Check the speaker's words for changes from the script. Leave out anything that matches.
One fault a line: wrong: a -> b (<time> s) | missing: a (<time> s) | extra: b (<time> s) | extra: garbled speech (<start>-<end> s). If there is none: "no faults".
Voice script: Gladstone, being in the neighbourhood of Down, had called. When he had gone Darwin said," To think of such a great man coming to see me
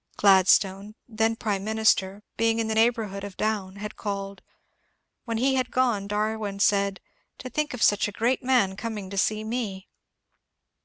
extra: then Prime Minister (1.1 s)